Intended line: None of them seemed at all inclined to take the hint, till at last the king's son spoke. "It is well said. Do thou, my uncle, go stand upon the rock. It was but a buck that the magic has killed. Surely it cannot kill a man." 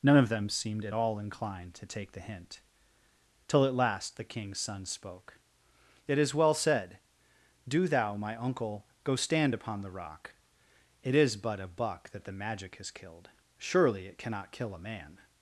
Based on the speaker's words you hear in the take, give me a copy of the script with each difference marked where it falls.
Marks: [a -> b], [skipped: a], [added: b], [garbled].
None of them seemed at all inclined to take the hint, till at last the king's son spoke. "It is well said. Do thou, my uncle, go stand upon the rock. It [was -> is] but a buck that the magic has killed. Surely it cannot kill a man."